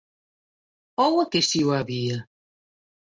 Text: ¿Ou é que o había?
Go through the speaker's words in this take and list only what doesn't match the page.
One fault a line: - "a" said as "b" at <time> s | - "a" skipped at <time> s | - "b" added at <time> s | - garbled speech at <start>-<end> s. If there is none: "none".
- "si" added at 1.5 s